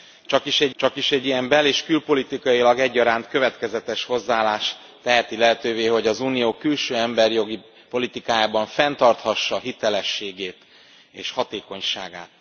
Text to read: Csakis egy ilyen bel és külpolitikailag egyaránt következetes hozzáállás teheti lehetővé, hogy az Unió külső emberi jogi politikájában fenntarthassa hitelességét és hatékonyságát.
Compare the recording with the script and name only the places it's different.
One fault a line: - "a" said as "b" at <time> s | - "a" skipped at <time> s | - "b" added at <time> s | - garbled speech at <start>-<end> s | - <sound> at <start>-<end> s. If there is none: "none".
- "csakis egy" added at 0.7 s